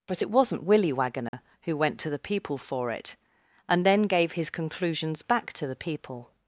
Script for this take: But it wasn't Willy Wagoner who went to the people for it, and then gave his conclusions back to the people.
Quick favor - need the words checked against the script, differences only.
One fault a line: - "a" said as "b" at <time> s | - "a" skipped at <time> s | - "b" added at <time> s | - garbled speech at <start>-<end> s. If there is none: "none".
none